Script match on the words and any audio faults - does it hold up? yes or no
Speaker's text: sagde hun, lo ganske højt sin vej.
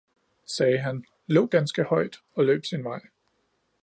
no